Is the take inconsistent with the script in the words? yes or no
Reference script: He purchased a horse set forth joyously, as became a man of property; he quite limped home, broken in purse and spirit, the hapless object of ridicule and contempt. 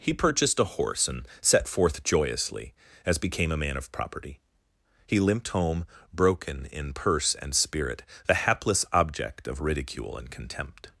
yes